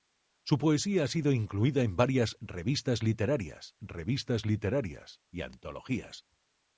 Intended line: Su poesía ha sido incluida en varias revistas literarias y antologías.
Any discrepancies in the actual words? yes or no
yes